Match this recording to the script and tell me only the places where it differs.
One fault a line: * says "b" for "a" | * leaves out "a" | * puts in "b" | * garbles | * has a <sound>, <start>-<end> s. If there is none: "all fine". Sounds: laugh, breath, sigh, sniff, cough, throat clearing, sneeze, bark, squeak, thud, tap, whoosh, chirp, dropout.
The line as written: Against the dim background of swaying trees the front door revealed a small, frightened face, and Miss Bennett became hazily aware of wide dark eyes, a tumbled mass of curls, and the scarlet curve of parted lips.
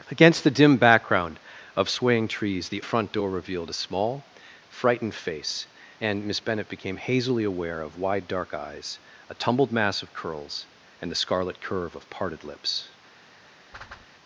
* has a whoosh, 13.7-14.1 s